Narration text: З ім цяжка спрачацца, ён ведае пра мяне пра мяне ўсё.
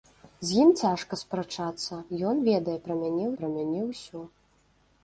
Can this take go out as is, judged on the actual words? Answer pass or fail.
pass